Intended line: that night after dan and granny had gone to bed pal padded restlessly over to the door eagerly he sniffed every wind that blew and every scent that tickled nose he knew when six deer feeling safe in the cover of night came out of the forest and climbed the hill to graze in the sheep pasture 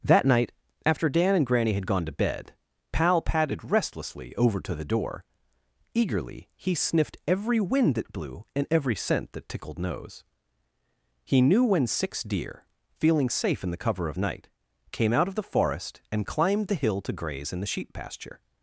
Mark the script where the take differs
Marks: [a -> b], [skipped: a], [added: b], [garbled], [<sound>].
that night after dan and granny had gone to bed pal padded restlessly over to the door eagerly he sniffed every wind that blew and every scent that tickled nose he knew when six deer feeling safe in the cover of night came out of the forest and climbed the hill to graze in the sheep pasture